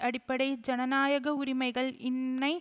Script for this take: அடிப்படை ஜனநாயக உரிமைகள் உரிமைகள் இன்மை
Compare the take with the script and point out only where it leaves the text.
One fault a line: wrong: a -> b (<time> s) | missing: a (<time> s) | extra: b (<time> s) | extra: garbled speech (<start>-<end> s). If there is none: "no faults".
missing: உரிமைகள் (1.9 s)